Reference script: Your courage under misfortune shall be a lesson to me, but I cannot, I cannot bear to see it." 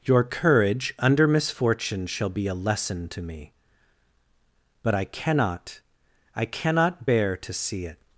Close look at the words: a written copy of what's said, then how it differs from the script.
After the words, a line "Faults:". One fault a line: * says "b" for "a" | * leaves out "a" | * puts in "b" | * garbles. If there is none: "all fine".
Your courage under misfortune shall be a lesson to me, but I cannot, I cannot bear to see it."
Faults:
all fine